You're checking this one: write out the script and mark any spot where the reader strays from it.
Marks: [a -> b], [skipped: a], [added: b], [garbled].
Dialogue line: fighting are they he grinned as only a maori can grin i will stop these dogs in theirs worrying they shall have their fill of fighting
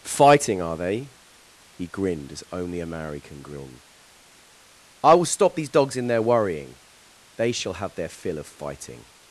fighting are they he grinned as only a maori can grin i will stop these dogs in [theirs -> their] worrying they shall have their fill of fighting